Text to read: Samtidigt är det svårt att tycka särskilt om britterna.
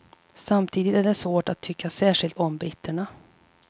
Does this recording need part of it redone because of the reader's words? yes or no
no